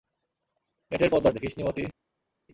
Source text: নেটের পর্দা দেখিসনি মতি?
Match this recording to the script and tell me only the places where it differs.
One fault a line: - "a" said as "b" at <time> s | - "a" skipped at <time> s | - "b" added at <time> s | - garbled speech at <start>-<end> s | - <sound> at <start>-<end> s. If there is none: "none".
none